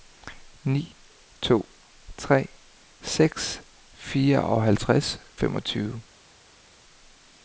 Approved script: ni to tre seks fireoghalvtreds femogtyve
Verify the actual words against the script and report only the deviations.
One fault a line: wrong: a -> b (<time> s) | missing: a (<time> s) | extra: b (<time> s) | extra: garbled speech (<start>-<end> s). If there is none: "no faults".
no faults